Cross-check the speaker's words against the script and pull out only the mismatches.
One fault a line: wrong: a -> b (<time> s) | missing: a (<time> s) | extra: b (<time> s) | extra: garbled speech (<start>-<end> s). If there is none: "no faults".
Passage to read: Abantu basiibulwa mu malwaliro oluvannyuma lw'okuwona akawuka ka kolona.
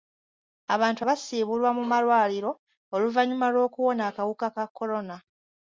no faults